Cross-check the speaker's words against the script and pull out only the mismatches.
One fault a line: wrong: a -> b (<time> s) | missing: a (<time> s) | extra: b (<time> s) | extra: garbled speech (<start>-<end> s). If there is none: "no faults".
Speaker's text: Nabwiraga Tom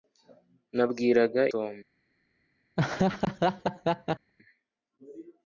no faults